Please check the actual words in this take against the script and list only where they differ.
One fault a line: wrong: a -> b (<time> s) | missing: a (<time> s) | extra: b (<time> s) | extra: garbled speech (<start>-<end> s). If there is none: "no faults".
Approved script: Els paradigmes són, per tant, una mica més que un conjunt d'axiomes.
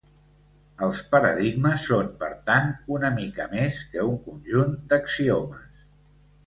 no faults